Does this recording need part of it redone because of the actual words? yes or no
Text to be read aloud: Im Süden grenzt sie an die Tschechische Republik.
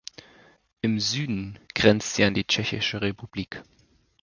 no